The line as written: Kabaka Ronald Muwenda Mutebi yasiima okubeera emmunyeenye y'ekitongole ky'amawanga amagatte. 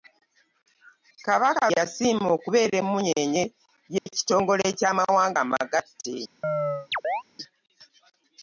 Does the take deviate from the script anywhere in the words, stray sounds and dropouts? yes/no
yes